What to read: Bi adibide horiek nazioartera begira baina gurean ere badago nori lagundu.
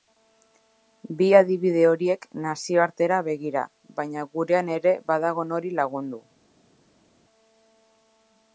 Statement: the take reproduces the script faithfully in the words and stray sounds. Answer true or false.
true